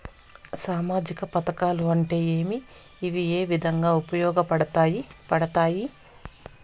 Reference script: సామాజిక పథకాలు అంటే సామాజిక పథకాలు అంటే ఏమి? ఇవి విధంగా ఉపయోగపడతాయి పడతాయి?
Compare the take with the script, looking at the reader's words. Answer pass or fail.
fail